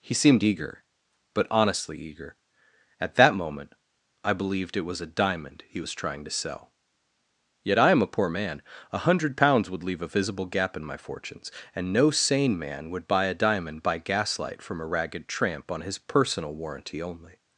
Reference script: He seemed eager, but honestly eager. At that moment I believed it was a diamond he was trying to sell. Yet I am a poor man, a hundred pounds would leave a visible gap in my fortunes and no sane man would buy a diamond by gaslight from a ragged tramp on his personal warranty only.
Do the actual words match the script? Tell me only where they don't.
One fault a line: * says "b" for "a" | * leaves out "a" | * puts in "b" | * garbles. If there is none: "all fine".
all fine